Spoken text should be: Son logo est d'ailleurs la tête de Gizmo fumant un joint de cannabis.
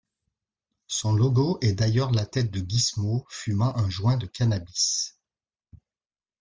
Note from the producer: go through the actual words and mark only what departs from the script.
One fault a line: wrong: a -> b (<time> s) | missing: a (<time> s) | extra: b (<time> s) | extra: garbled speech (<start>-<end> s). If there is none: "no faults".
no faults